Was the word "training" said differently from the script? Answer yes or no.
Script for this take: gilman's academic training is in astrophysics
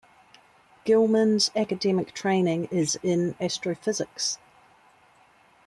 no